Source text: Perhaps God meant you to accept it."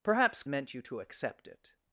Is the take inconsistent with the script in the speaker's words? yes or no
yes